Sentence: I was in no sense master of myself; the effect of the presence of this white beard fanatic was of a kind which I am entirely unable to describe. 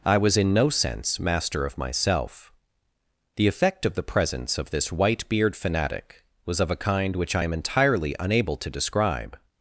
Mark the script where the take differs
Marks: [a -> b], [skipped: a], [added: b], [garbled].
I was in no sense master of myself; the effect of the presence of this white beard fanatic was of a kind which I am entirely unable to describe.